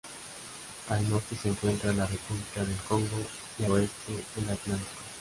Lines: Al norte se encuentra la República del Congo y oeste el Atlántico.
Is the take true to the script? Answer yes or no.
yes